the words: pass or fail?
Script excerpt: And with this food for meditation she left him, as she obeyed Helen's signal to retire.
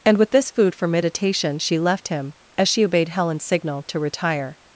pass